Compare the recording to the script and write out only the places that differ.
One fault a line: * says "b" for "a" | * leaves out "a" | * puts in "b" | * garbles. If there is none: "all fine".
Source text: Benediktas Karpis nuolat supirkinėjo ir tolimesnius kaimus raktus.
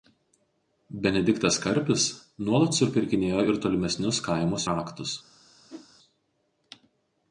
all fine